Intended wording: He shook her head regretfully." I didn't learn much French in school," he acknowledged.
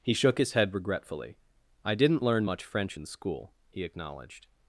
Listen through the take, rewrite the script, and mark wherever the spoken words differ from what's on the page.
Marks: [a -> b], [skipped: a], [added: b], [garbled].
He shook [her -> his] head regretfully." I didn't learn much French in school," he acknowledged.